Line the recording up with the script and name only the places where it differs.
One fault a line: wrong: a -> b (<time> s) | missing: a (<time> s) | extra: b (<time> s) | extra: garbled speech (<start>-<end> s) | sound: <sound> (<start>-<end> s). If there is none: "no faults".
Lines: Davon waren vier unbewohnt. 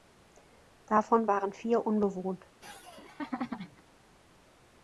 sound: laugh (2.6-3.8 s)